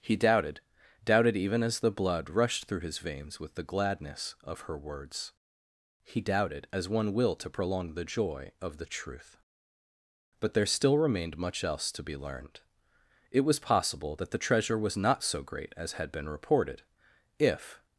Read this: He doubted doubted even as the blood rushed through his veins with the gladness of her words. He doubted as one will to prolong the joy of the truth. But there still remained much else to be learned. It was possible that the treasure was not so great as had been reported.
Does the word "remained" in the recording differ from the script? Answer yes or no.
no